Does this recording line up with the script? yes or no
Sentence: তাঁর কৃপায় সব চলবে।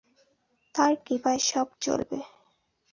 yes